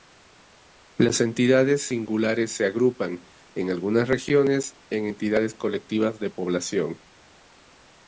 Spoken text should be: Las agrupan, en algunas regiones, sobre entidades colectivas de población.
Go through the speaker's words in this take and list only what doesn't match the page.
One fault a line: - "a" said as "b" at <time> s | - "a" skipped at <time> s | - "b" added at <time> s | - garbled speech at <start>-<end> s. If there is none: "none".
- "entidades singulares se" added at 1.2 s
- "sobre" said as "en" at 4.9 s